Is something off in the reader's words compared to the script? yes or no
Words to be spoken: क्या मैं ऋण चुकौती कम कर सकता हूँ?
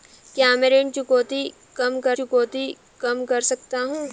yes